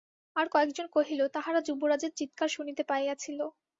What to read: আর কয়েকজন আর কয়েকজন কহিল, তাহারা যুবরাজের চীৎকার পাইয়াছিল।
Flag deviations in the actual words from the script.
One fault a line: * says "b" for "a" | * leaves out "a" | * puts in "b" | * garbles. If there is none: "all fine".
* leaves out "আর কয়েকজন"
* puts in "শুনিতে"